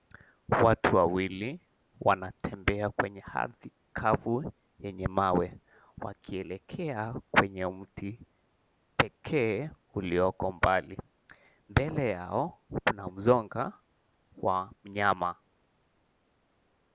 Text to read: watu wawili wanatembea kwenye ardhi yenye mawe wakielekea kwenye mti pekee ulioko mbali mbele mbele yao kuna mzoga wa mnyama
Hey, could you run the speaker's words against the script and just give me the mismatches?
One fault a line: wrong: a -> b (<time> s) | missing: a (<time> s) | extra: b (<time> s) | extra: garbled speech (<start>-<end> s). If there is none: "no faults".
extra: kavu (3.9 s)
missing: mbele (12.1 s)